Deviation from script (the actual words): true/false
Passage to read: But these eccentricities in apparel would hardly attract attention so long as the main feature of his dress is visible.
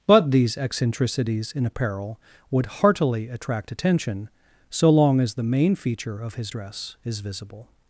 true